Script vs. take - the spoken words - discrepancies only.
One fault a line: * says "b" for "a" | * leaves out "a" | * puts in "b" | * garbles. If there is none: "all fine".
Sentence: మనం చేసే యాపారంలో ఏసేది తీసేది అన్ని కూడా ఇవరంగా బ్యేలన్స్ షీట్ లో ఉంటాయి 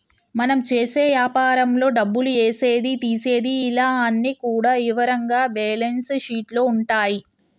* puts in "డబ్బులు"
* puts in "ఇలా"